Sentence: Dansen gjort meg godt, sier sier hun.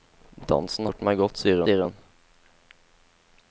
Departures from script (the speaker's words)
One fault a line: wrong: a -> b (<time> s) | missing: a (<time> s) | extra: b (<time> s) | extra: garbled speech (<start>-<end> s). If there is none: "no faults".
no faults